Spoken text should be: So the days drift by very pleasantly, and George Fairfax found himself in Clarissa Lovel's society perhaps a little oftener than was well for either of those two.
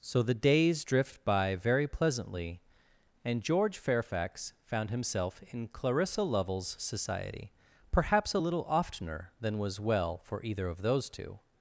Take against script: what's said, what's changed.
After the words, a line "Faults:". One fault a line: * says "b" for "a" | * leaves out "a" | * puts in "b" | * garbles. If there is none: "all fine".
So the days drift by very pleasantly, and George Fairfax found himself in Clarissa Lovel's society perhaps a little oftener than was well for either of those two.
Faults:
all fine